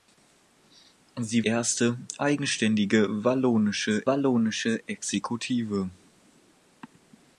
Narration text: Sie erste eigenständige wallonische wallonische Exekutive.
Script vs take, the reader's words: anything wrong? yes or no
no